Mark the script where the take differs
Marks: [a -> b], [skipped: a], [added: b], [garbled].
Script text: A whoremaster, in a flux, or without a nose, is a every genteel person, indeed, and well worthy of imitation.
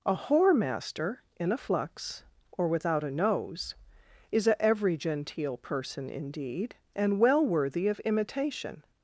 A whoremaster, in a flux, or without a nose, is a every genteel person, indeed, and well worthy of imitation.